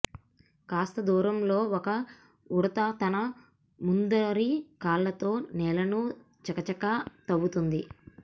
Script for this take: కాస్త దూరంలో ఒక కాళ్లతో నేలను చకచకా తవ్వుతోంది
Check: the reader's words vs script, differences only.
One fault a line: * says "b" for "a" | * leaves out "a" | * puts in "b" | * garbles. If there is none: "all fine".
* puts in "ఉడుత తన ముందరి"